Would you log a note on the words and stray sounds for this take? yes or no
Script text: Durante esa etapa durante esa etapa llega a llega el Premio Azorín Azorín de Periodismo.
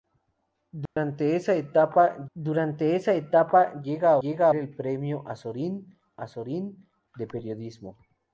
yes